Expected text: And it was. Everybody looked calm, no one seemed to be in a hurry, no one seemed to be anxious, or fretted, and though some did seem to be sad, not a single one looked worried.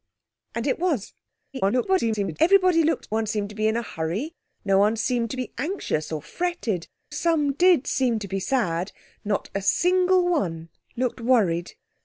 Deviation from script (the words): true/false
true